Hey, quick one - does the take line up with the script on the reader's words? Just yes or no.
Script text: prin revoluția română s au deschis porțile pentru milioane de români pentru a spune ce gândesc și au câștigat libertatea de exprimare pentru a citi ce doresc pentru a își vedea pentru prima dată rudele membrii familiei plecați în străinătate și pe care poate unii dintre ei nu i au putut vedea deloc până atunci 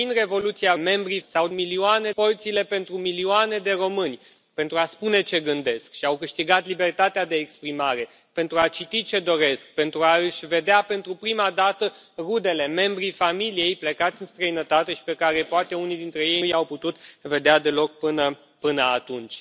no